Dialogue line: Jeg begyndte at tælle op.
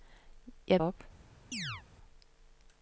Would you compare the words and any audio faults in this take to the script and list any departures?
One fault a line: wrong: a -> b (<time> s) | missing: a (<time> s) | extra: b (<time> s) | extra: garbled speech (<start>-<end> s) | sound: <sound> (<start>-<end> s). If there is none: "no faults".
missing: begyndte at tælle (0.8 s)
sound: chirp (1.5-1.8 s)